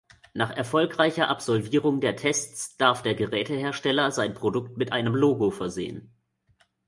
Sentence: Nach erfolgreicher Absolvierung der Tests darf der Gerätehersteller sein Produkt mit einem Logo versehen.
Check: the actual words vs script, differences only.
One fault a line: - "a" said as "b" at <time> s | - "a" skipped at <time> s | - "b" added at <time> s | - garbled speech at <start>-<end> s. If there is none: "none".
none